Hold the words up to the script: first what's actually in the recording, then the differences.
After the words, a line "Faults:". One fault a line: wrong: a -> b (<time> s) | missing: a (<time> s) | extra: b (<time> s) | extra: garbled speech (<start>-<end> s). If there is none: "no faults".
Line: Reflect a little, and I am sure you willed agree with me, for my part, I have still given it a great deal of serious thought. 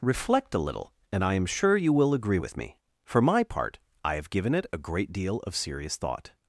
Reflect a little, and I am sure you will agree with me, for my part, I have given it a great deal of serious thought.
Faults:
wrong: willed -> will (1.9 s)
missing: still (4.3 s)